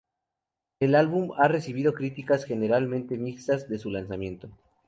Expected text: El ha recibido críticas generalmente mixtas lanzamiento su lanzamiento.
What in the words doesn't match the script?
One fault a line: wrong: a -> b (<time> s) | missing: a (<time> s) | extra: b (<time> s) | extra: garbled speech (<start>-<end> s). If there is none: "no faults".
extra: álbum (0.9 s)
wrong: lanzamiento -> desde (3.7 s)